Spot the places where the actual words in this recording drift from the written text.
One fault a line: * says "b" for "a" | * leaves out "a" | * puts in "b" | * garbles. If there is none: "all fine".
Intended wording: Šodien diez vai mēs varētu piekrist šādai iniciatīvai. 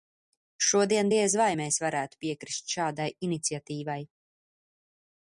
all fine